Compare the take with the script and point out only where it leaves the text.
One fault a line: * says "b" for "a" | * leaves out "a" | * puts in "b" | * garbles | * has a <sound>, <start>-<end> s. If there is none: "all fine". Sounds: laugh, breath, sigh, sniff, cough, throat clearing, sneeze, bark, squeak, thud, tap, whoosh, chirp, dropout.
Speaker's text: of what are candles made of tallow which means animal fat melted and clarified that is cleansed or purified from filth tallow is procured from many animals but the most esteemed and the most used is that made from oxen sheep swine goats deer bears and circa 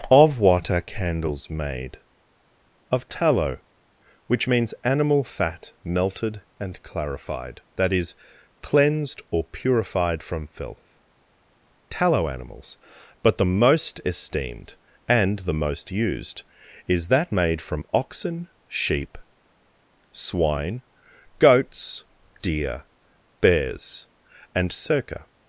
* leaves out "is procured from many"